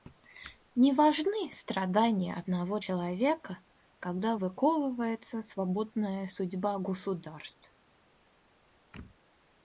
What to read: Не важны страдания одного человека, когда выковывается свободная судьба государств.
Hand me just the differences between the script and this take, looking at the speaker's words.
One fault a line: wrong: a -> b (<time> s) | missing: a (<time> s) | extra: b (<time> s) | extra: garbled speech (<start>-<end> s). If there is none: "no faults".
no faults